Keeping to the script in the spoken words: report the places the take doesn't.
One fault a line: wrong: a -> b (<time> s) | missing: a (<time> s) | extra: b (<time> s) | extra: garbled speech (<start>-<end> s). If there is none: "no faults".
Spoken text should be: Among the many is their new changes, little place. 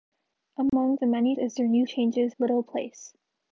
no faults